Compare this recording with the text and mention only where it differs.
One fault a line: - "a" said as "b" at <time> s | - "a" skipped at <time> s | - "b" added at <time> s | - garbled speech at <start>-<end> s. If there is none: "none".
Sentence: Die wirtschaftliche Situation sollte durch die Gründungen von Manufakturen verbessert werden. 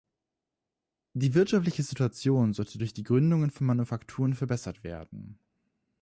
none